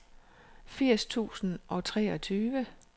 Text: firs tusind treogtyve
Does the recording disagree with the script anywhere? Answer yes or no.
yes